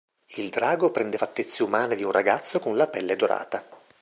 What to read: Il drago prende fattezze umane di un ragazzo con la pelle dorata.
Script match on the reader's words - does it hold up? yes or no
yes